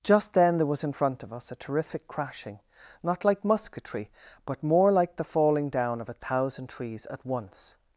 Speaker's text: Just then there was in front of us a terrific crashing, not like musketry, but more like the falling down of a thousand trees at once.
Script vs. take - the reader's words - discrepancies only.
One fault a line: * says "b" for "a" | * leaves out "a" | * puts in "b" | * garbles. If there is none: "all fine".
all fine